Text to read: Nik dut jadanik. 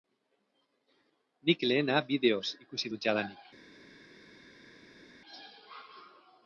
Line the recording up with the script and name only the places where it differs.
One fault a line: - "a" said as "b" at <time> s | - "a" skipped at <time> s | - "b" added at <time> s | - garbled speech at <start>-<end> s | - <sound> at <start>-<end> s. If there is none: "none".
- "lehena bideoz ikusi" added at 1.7 s